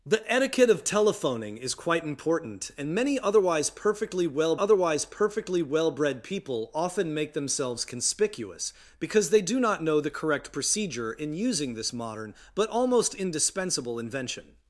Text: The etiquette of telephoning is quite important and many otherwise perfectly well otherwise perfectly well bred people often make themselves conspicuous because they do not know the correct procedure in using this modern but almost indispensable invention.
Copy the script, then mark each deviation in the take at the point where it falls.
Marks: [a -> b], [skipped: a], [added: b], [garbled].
The etiquette of telephoning is quite important and many otherwise perfectly well otherwise perfectly well bred people often make themselves conspicuous because they do not know the correct procedure in using this modern but almost indispensable invention.